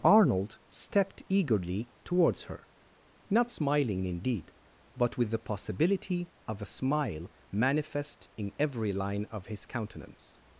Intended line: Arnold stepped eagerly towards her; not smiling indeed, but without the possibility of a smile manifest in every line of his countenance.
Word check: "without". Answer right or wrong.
wrong